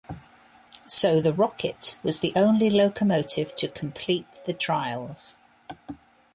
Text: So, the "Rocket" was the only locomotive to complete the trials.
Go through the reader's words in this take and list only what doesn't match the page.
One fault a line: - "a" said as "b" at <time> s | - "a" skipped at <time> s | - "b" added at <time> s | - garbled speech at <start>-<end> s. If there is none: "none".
none